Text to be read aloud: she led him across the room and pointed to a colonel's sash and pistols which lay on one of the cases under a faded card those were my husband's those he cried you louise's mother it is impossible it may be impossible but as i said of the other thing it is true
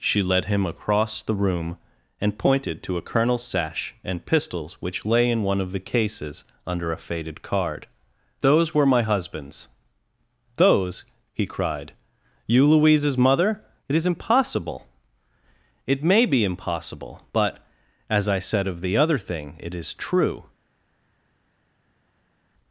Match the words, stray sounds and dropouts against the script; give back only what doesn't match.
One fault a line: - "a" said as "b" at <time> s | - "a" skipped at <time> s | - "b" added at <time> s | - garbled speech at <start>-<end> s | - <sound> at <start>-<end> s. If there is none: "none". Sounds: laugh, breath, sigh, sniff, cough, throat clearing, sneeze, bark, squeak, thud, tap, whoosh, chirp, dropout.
- "on" said as "in" at 5.3 s